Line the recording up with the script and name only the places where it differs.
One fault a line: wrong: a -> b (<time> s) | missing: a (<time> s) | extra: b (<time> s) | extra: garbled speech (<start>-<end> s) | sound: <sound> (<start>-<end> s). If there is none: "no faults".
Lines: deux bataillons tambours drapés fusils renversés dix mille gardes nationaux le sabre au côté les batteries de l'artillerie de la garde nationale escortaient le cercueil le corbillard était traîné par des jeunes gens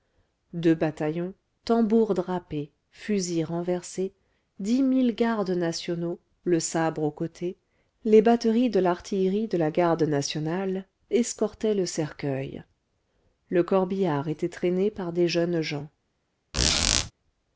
sound: squeak (16.5-17.1 s)